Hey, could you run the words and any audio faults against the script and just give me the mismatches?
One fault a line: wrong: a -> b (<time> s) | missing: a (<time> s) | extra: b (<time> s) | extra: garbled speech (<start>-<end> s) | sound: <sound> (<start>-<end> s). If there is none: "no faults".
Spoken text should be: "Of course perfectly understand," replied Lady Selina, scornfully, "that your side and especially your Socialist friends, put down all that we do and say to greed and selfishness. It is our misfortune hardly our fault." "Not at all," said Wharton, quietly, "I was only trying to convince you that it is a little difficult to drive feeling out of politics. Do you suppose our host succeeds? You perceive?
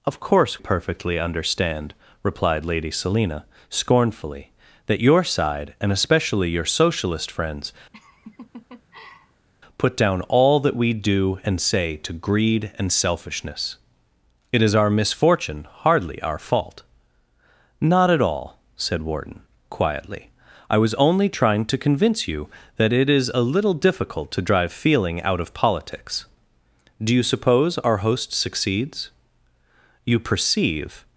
sound: laugh (7.9-9.5 s)